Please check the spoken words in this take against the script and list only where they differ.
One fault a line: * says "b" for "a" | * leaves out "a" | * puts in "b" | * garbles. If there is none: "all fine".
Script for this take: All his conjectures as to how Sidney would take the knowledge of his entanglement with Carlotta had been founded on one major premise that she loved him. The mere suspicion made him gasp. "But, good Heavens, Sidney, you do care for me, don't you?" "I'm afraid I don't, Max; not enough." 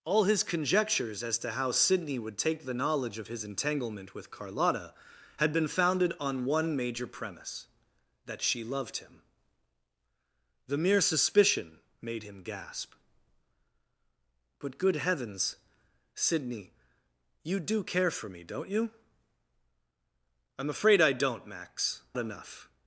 * leaves out "not"